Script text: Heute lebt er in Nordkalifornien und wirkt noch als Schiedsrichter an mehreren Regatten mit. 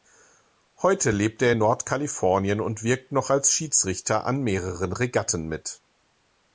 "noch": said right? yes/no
yes